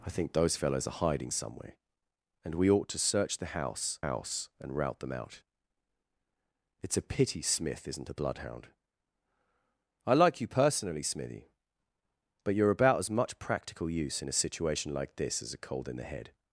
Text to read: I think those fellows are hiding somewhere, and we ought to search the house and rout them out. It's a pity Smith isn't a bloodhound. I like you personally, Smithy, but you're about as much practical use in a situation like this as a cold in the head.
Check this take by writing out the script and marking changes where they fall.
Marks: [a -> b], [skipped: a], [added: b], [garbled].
I think those fellows are hiding somewhere, and we ought to search the house [added: house] and rout them out. It's a pity Smith isn't a bloodhound. I like you personally, Smithy, but you're about as much practical use in a situation like this as a cold in the head.